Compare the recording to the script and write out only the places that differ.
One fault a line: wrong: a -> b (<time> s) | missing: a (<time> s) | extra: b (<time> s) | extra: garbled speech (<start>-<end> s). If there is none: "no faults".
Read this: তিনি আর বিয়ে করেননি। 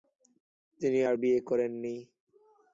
no faults